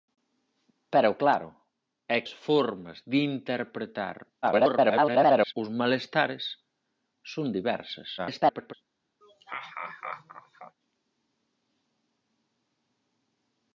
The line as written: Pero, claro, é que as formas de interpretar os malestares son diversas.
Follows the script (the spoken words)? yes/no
no